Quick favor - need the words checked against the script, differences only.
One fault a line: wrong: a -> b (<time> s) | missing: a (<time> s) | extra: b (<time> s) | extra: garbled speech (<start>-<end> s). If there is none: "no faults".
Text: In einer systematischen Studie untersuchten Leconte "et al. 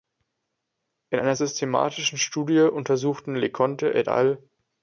no faults